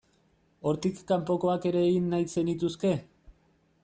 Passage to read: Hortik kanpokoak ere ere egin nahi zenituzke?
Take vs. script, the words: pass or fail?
fail